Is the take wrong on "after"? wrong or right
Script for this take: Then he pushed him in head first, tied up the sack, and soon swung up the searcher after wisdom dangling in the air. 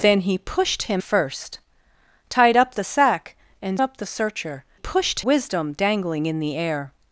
wrong